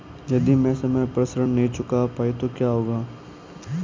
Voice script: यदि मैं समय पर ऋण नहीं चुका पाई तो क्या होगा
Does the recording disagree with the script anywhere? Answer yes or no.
no